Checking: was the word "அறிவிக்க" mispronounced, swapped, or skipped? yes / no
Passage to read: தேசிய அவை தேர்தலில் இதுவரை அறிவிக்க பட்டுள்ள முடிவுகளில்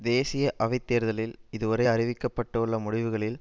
no